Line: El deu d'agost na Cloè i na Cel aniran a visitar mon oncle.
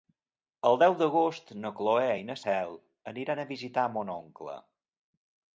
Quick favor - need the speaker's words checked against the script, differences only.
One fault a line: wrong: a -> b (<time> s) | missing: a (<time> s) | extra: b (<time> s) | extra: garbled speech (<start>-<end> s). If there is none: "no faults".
no faults